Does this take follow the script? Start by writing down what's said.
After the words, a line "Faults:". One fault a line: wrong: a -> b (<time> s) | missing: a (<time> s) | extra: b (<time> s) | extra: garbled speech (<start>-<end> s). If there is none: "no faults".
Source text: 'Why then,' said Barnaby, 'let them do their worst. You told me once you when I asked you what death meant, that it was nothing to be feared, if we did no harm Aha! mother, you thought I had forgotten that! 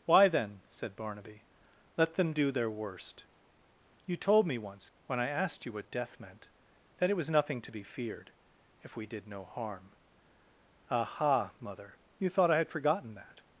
'Why then,' said Barnaby, 'let them do their worst. You told me once when I asked you what death meant, that it was nothing to be feared, if we did no harm Aha! mother, you thought I had forgotten that!
Faults:
missing: you (4.9 s)